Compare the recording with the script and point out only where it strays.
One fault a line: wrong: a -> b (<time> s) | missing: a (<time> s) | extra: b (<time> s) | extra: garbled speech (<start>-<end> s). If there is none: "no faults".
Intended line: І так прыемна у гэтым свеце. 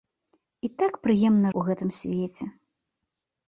no faults